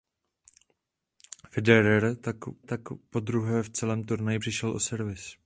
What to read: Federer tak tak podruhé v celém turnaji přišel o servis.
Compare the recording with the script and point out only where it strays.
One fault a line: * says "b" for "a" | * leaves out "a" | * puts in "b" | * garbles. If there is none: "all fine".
all fine